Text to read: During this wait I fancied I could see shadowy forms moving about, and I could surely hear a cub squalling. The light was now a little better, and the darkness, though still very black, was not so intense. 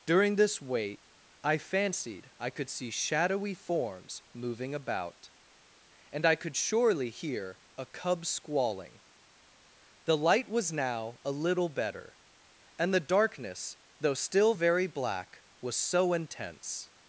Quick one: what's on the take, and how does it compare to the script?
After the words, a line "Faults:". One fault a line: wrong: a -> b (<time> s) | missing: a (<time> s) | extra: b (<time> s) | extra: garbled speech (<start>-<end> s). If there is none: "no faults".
During this wait I fancied I could see shadowy forms moving about, and I could surely hear a cub squalling. The light was now a little better, and the darkness, though still very black, was so intense.
Faults:
missing: not (15.8 s)